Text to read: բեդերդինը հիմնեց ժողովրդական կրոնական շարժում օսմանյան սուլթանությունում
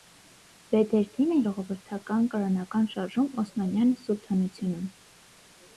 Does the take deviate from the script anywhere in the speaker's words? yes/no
yes